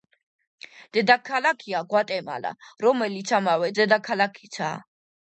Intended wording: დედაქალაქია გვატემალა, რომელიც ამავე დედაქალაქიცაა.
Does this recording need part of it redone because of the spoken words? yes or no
no